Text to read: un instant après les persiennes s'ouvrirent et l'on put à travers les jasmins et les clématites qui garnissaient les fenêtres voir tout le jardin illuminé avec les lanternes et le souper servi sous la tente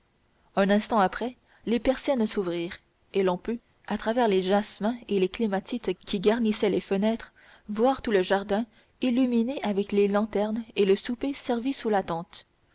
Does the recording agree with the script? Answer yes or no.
yes